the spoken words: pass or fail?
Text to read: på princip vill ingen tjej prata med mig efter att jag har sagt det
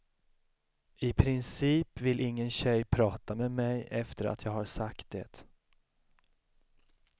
fail